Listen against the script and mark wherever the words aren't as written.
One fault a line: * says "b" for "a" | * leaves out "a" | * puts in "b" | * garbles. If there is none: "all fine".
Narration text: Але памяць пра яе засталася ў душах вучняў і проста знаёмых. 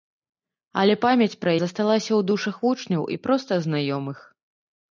* leaves out "яе"